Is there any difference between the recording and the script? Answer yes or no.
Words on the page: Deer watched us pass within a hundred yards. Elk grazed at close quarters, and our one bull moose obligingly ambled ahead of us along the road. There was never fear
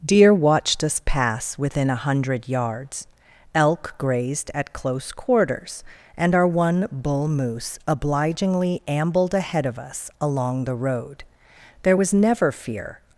no